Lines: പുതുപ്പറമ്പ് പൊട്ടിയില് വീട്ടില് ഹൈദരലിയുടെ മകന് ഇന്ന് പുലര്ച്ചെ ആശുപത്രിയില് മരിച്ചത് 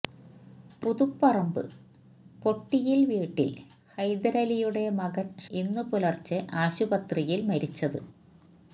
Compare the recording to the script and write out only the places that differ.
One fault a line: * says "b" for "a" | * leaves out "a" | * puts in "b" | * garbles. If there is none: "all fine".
all fine